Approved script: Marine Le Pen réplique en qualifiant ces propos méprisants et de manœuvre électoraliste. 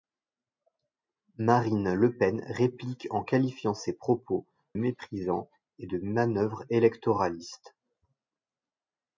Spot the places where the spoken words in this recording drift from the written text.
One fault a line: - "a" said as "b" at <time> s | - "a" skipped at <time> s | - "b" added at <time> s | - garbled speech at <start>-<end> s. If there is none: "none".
none